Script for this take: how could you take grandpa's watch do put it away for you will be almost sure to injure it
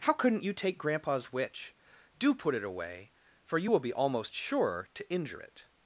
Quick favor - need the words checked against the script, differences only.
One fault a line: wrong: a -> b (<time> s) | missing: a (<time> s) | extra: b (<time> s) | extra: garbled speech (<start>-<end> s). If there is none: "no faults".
wrong: could -> couldn't (0.1 s)
wrong: watch -> witch (1.3 s)